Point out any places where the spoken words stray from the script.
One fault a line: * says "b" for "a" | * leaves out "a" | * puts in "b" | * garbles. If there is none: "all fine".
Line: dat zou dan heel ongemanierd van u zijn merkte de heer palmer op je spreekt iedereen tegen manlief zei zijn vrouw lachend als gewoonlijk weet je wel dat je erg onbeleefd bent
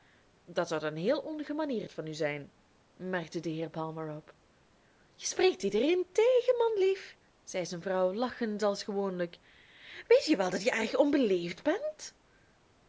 all fine